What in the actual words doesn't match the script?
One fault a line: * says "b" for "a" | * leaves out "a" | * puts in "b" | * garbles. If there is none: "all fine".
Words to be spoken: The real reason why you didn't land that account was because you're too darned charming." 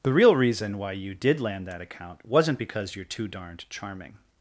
* says "did" for "didn't"
* says "wasn't" for "was"